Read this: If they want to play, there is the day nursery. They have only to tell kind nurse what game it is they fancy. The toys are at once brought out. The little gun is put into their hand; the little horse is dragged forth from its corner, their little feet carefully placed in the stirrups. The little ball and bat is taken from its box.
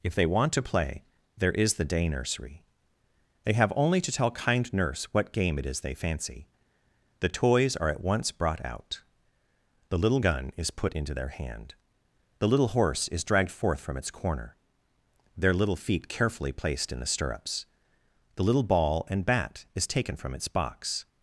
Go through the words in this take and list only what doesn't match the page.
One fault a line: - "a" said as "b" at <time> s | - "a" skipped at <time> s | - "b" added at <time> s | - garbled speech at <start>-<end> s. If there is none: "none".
none